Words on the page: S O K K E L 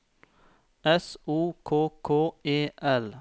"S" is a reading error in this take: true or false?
false